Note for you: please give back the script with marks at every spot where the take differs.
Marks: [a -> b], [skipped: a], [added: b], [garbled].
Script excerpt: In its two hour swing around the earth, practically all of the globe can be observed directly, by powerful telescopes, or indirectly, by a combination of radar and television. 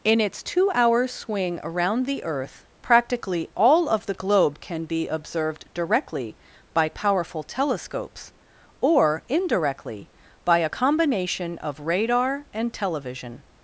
In its two hour swing around the earth, practically all of the globe can be observed directly, by powerful telescopes, or indirectly, by a combination of radar and television.